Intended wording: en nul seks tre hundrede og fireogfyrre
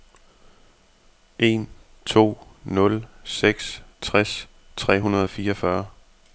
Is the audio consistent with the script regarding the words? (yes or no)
no